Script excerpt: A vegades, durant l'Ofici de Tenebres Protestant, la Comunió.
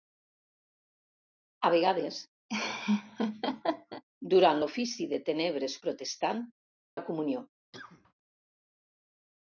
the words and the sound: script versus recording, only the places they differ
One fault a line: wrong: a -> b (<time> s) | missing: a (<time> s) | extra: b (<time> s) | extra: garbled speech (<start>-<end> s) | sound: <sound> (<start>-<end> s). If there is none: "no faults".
sound: laugh (2.5-4.0 s)
sound: cough (7.7-8.1 s)